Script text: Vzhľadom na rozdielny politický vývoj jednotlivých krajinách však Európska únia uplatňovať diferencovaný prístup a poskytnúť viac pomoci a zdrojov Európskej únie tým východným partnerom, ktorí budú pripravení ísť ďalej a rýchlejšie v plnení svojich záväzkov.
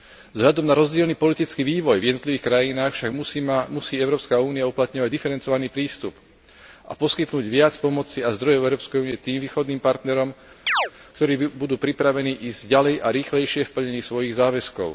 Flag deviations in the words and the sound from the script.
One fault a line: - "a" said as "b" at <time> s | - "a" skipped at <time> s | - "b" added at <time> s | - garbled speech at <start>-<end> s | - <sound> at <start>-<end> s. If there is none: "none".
- "v" added at 2.0 s
- "musí" added at 3.7 s
- chirp at 10.7-10.9 s